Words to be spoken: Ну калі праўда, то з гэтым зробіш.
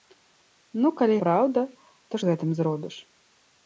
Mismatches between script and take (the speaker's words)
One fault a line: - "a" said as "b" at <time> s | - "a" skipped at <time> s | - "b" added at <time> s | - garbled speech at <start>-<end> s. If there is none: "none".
none